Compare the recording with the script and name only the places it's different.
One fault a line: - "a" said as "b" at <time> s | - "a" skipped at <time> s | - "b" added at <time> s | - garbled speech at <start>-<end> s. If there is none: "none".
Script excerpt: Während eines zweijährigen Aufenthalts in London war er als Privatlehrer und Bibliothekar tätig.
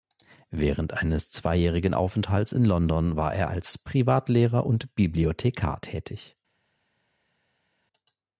none